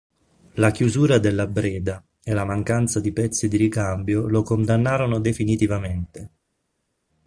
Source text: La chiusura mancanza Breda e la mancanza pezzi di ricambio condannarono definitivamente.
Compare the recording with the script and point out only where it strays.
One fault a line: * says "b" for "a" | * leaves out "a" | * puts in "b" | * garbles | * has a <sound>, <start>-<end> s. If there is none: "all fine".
* says "della" for "mancanza"
* puts in "di"
* puts in "lo"